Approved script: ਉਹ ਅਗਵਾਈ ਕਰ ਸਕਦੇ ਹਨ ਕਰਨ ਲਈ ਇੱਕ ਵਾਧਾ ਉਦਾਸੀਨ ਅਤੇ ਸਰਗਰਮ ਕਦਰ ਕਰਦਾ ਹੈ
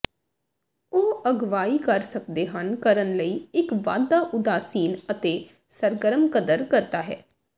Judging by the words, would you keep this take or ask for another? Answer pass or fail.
pass